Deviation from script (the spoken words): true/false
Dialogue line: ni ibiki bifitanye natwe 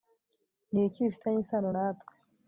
true